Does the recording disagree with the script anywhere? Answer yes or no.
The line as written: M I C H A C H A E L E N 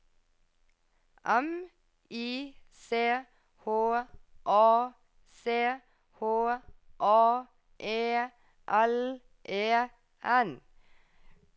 no